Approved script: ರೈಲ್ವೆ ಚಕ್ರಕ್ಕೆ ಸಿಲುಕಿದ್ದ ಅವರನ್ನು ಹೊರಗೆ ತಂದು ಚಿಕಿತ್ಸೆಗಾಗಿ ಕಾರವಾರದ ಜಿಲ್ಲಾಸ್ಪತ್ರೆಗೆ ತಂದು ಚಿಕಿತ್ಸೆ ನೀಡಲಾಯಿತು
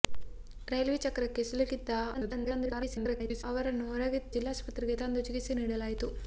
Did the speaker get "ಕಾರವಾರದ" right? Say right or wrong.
wrong